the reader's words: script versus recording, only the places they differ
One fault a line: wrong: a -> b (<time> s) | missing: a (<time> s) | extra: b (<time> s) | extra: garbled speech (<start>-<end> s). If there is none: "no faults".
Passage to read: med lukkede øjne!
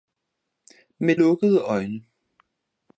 no faults